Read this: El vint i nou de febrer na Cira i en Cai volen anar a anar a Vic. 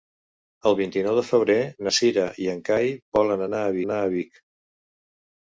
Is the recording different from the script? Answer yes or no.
no